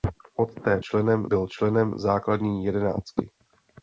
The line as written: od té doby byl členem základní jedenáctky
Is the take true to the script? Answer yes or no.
no